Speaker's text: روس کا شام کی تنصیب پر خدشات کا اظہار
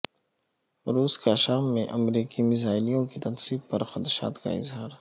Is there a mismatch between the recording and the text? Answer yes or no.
yes